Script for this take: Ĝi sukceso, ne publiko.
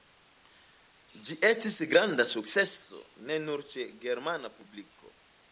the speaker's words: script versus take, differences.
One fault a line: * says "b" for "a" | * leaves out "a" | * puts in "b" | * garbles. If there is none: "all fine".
* puts in "estis granda"
* puts in "nur ĉe germana"